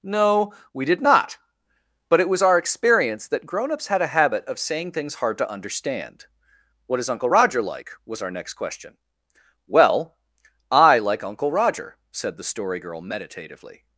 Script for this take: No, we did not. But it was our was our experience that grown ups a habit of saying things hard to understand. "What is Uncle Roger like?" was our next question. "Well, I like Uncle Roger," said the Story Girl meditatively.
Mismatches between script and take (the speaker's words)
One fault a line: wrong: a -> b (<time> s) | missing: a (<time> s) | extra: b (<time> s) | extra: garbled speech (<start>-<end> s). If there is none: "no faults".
missing: was our (2.6 s)
extra: had (3.9 s)